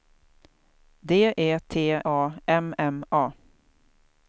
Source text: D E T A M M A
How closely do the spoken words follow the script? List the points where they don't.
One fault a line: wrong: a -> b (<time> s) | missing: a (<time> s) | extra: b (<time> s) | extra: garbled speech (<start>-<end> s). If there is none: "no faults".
no faults